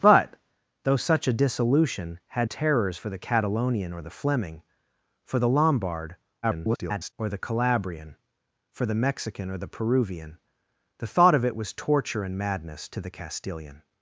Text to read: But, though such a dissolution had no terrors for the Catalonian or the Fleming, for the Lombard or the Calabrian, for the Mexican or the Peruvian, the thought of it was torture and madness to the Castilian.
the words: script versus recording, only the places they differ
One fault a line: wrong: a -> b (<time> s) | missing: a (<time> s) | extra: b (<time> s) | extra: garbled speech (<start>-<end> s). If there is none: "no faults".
missing: no (2.5 s)
extra: garbled speech (6.4-7.1 s)